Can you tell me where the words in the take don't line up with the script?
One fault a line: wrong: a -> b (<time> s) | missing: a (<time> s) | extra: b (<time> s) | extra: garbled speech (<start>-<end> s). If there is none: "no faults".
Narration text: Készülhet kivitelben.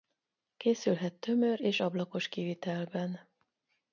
extra: tömör és ablakos (1.1 s)